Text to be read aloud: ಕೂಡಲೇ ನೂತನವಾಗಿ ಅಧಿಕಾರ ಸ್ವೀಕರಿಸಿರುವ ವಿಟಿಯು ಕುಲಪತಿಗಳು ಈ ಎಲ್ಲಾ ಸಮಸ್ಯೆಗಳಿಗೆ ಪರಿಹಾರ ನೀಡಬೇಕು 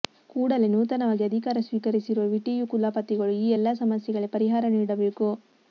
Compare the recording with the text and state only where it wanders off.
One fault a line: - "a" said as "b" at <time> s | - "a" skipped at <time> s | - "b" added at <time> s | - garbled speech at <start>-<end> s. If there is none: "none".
none